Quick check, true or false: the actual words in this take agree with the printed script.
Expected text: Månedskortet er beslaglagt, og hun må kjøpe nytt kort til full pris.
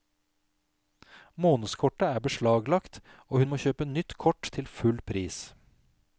true